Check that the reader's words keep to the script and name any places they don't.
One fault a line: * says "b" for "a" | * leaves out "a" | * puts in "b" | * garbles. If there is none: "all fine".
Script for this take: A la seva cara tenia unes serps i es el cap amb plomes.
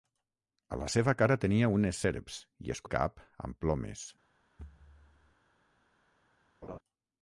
all fine